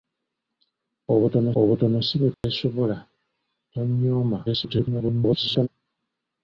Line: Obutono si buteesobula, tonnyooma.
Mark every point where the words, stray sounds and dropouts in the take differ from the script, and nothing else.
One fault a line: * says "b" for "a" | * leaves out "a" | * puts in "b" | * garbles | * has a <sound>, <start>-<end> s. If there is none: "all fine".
* puts in "obutono"
* has a dropout, 2.3-2.4 s
* garbles